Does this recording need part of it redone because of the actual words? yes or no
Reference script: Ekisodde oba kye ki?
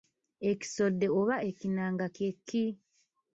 yes